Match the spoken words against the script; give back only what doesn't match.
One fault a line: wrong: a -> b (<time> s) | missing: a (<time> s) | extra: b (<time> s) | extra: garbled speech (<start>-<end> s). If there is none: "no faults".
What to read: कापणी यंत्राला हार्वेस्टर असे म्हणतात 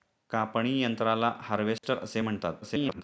extra: garbled speech (2.6-3.0 s)